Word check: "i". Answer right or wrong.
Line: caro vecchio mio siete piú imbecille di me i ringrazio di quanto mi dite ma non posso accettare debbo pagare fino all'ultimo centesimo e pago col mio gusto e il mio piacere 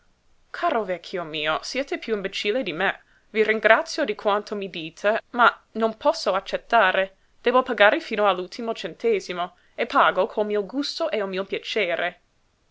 right